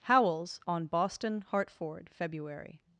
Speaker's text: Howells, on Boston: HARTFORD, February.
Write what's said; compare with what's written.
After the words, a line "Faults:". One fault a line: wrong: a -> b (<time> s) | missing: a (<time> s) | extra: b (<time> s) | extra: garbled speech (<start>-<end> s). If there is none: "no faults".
Howells, on Boston: HARTFORD, February.
Faults:
no faults